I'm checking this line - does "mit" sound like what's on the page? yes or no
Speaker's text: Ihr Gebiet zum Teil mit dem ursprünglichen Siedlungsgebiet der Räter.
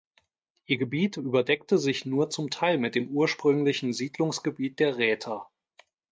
yes